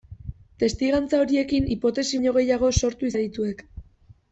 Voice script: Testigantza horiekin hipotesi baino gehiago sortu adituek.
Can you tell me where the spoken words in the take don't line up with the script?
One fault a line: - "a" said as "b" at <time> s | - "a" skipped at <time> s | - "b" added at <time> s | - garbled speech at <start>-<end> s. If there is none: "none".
none